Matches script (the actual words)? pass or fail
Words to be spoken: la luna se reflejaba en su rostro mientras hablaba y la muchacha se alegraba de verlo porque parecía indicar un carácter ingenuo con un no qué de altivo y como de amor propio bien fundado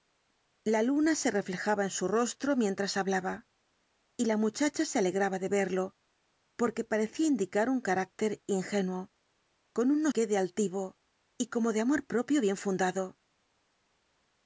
pass